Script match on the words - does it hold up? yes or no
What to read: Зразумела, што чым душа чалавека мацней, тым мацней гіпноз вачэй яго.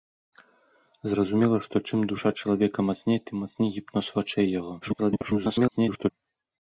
no